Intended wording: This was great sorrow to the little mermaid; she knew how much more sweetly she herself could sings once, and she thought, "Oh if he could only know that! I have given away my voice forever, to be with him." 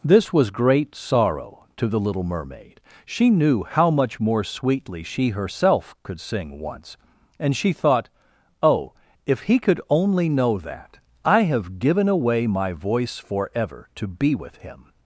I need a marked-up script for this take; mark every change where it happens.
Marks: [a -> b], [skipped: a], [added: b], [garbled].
This was great sorrow to the little mermaid; she knew how much more sweetly she herself could [sings -> sing] once, and she thought, "Oh if he could only know that! I have given away my voice forever, to be with him."